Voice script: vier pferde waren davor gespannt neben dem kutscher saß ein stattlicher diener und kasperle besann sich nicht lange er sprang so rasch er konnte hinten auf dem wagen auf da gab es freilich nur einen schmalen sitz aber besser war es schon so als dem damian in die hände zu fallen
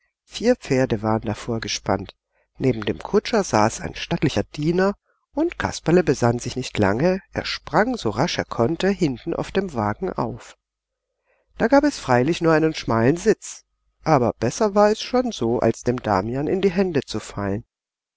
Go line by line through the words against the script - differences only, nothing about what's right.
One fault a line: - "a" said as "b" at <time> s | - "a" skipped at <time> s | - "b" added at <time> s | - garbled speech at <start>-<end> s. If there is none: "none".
none